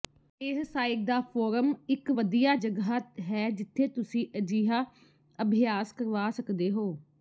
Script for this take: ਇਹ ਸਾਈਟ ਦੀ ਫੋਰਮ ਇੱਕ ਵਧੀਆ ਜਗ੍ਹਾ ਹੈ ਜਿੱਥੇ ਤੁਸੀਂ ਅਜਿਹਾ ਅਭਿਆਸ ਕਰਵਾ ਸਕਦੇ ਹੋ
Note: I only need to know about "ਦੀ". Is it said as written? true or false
false